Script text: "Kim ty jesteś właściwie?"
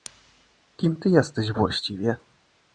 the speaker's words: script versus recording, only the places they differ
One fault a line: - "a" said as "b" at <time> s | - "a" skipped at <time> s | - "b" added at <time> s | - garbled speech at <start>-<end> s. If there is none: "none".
none